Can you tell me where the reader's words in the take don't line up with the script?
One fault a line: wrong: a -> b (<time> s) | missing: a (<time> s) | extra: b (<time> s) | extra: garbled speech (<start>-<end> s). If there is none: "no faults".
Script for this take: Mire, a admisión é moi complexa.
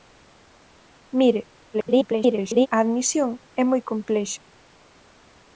extra: garbled speech (1.7-2.7 s)